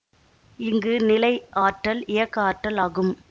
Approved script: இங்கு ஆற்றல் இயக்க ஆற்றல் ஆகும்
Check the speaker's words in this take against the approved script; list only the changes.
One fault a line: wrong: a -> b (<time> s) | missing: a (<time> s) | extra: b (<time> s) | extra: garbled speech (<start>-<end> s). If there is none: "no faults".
extra: நிலை (1.0 s)